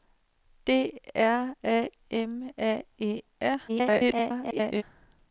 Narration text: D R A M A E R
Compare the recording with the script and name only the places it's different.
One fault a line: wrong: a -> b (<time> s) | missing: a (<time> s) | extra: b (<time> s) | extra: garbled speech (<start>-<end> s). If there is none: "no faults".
extra: garbled speech (3.7-4.8 s)